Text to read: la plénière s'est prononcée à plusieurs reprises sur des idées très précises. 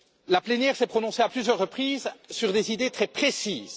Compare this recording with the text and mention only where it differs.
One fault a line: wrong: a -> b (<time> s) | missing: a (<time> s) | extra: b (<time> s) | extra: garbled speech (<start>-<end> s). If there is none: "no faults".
no faults